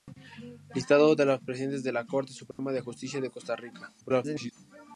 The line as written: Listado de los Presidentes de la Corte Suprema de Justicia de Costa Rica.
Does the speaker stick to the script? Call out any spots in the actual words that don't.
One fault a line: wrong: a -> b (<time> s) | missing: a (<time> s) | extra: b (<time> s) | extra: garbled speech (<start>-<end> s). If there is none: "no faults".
extra: garbled speech (4.0-4.5 s)